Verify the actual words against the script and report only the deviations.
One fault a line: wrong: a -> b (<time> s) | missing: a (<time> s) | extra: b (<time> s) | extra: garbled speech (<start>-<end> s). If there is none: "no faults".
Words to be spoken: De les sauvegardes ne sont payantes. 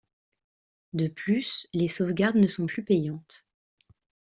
extra: plus (1.1 s)
extra: plus (2.7 s)